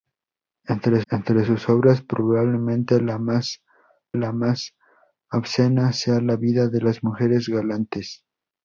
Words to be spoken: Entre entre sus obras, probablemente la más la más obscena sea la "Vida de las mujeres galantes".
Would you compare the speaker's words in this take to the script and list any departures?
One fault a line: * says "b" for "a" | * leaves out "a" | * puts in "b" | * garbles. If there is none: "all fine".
all fine